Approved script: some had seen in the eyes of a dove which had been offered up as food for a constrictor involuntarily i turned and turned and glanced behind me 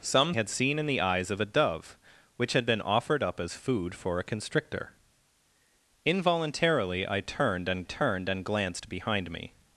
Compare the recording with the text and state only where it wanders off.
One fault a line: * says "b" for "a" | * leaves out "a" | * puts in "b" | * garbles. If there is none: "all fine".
all fine